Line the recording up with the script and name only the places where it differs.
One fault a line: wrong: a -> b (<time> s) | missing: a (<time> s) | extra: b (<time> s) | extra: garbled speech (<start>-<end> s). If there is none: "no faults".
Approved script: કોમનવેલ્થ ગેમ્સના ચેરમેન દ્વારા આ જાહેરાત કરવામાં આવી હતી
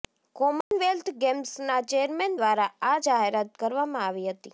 no faults